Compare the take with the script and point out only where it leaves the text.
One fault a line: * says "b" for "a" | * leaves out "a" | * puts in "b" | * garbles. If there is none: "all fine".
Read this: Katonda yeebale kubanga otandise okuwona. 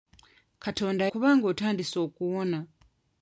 * leaves out "yeebale"